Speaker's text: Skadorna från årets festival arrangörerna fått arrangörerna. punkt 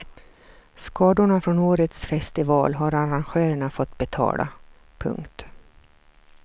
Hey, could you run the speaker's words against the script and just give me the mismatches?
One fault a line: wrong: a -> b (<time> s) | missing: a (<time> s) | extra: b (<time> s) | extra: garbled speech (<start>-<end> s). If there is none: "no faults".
extra: har (2.7 s)
wrong: arrangörerna -> betala (4.0 s)